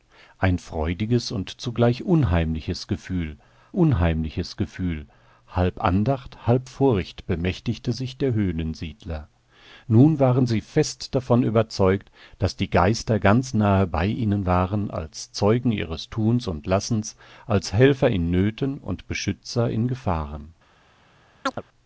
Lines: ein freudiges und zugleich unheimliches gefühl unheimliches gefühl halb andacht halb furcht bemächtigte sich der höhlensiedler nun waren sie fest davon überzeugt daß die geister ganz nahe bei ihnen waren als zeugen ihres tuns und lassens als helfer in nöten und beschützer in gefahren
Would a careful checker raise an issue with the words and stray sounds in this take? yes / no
yes